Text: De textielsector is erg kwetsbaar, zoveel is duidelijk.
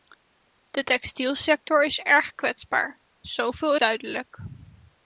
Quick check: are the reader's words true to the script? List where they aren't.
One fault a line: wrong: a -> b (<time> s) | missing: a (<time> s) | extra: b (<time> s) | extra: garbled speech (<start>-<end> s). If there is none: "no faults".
missing: is (3.8 s)